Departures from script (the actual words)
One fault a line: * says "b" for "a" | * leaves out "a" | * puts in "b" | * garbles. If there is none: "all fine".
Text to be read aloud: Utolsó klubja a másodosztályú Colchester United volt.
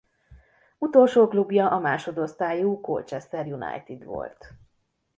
all fine